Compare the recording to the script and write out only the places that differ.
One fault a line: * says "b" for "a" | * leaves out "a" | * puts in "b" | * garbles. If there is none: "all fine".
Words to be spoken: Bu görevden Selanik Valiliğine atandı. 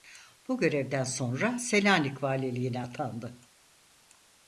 * puts in "sonra"